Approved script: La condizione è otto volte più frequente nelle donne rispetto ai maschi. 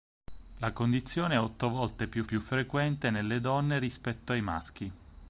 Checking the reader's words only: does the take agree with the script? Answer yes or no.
no